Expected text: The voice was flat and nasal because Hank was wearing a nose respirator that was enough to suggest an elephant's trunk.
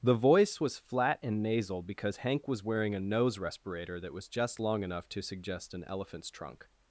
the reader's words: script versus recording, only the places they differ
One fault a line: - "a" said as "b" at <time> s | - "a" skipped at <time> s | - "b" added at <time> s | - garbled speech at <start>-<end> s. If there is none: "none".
- "just long" added at 4.3 s